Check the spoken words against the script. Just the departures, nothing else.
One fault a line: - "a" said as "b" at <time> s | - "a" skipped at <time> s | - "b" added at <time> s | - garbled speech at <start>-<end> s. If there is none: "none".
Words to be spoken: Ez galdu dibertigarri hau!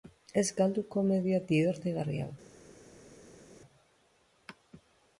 - "komedia" added at 0.9 s